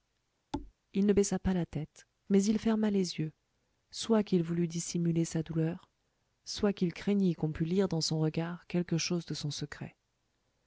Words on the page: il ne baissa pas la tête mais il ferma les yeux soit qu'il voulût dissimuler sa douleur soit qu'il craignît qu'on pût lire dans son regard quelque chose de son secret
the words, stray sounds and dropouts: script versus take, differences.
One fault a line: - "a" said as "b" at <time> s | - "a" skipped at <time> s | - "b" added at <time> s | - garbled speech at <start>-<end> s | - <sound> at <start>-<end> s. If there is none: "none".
- thud at 0.5-0.7 s